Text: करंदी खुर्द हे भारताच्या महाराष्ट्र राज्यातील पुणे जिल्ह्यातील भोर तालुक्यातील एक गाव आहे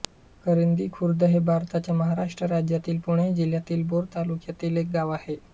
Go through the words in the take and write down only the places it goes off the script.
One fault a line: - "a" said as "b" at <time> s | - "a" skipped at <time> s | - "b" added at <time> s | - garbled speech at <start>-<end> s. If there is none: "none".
none